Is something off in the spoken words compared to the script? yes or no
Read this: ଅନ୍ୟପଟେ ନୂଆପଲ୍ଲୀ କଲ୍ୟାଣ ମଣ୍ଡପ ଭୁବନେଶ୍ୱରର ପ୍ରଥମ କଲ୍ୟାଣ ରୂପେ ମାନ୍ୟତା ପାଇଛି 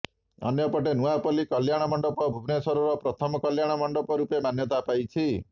yes